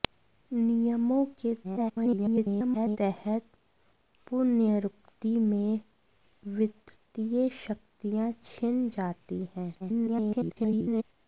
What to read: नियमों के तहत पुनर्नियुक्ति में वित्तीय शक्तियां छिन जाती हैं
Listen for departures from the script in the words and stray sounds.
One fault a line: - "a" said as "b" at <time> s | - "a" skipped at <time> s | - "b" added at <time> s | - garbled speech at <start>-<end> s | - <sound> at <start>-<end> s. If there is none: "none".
- garbled speech at 1.6-3.0 s
- garbled speech at 9.8-11.0 s